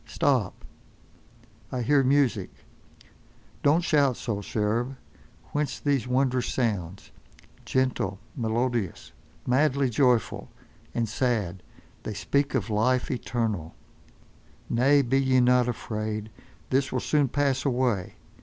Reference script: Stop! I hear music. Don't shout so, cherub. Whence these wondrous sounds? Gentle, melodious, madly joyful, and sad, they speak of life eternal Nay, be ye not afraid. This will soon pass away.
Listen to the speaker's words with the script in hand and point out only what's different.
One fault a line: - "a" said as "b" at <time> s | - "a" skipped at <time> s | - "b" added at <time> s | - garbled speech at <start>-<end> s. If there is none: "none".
none